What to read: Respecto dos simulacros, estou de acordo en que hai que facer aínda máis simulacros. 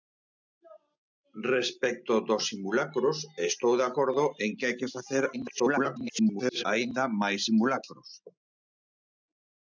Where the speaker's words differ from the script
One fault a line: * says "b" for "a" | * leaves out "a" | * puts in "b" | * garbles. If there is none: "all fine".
* garbles